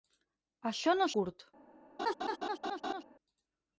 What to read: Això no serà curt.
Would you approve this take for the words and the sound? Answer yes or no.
no